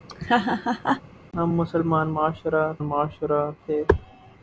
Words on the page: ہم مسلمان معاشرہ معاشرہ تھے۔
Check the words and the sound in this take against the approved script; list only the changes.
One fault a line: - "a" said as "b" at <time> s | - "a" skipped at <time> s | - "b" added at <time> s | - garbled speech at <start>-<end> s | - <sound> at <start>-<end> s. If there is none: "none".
- laugh at 0.1-1.0 s